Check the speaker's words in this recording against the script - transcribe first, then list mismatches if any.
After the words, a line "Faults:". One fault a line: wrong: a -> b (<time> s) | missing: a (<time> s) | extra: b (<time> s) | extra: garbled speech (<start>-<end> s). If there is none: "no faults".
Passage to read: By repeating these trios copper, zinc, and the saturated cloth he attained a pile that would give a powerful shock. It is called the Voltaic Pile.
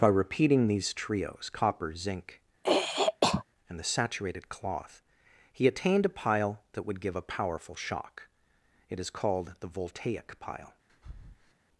By repeating these trios copper, zinc, and the saturated cloth he attained a pile that would give a powerful shock. It is called the Voltaic Pile.
Faults:
no faults